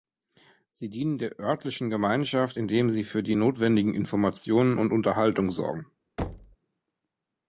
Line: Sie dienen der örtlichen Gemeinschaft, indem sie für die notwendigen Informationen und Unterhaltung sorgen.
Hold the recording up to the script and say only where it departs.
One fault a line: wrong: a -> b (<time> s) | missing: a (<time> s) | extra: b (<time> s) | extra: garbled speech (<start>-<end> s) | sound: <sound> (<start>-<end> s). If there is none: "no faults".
sound: thud (6.2-6.6 s)